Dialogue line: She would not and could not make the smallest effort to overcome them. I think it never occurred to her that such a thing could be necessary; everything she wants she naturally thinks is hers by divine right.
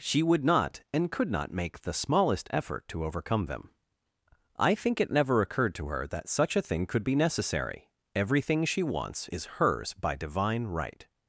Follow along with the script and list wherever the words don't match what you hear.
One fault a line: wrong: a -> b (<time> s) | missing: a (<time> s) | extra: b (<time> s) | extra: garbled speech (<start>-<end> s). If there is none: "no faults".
missing: she naturally thinks (9.3 s)